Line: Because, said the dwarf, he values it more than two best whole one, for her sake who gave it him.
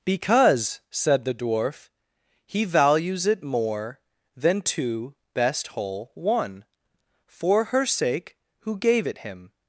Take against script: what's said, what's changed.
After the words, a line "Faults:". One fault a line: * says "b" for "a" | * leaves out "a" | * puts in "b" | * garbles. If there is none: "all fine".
Because, said the dwarf, he values it more than two best whole one, for her sake who gave it him.
Faults:
all fine